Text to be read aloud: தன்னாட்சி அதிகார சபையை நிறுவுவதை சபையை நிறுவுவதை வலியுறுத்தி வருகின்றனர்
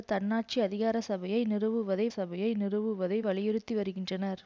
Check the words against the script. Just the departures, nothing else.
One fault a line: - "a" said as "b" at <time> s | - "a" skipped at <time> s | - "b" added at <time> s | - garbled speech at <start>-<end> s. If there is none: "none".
none